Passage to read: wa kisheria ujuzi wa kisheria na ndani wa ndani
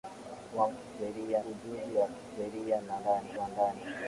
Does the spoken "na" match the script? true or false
true